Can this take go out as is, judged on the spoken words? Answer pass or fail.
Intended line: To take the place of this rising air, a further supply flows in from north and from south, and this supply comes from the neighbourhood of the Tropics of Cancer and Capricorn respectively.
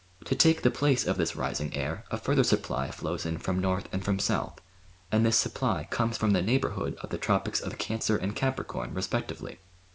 pass